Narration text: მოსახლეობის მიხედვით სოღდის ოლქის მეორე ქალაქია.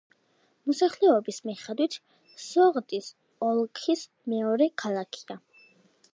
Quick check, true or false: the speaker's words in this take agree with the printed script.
true